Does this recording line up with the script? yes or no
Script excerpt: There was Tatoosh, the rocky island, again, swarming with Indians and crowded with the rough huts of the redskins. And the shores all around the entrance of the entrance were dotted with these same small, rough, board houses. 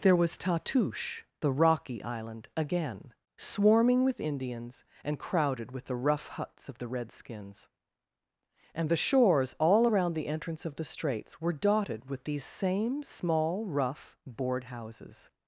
no